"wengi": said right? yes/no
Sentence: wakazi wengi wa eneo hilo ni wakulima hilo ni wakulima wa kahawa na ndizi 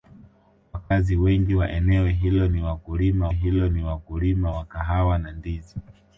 yes